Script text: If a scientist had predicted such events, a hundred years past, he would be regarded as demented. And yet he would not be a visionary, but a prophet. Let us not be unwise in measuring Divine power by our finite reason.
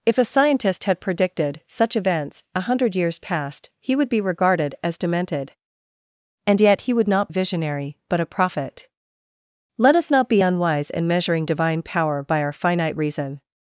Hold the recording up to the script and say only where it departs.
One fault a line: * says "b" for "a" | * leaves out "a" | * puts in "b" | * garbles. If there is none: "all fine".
* leaves out "be"